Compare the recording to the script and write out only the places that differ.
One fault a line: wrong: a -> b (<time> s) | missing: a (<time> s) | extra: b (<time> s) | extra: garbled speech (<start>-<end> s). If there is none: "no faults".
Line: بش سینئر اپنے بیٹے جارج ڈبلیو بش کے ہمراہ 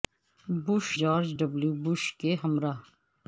missing: سینئر اپنے بیٹے (0.8 s)